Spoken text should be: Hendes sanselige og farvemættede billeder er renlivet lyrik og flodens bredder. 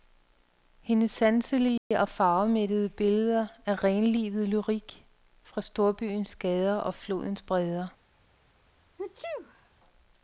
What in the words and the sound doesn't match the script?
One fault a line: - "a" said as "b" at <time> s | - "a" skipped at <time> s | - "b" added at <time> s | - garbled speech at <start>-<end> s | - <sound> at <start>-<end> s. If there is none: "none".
- dropout at 1.8-1.9 s
- "fra storbyens gader" added at 5.4 s
- sneeze at 9.0-9.7 s